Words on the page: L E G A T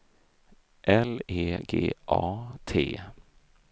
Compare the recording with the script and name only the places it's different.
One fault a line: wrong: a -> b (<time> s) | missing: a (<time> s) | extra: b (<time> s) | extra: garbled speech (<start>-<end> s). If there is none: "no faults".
no faults